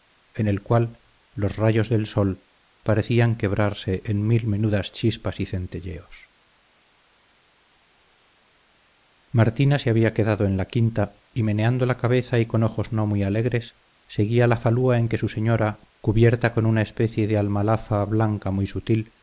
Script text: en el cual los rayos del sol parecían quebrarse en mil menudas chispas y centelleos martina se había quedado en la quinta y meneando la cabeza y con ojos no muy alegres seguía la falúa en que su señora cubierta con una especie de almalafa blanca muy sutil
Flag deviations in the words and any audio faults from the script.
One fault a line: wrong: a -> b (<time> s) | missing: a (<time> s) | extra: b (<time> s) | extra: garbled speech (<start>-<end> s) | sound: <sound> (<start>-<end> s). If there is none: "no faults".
no faults